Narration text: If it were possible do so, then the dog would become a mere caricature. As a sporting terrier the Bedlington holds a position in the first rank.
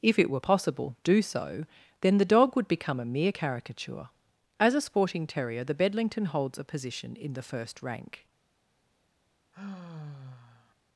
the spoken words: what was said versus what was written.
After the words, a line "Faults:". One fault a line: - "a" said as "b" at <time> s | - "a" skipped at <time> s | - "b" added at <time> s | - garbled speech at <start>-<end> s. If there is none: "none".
If it were possible do so, then the dog would become a mere caricature. As a sporting terrier the Bedlington holds a position in the first rank.
Faults:
none